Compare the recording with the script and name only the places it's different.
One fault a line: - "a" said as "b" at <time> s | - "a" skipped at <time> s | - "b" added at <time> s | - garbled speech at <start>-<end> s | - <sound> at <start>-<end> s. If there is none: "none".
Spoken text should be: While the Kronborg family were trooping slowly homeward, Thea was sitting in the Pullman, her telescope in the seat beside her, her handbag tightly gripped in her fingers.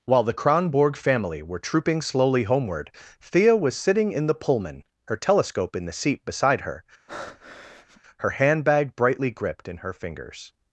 - breath at 7.1-8.0 s
- "tightly" said as "brightly" at 8.9 s